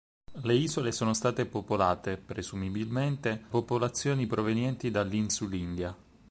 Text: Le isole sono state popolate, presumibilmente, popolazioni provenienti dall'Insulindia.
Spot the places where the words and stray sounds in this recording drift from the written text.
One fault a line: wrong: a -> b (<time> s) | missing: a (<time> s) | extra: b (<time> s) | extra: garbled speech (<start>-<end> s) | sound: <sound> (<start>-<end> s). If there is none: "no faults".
no faults